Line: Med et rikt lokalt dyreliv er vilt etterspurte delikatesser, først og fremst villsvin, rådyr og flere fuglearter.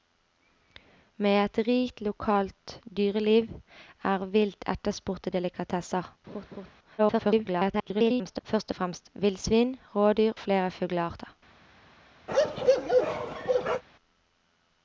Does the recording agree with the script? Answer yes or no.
no